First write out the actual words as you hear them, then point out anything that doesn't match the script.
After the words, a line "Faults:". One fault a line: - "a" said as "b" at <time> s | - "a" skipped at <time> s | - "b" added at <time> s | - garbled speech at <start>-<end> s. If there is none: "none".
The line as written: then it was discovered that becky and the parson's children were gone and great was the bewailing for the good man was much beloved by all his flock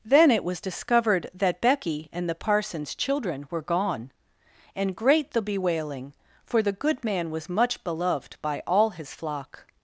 then it was discovered that becky and the parson's children were gone and great the bewailing for the good man was much beloved by all his flock
Faults:
- "was" skipped at 5.3 s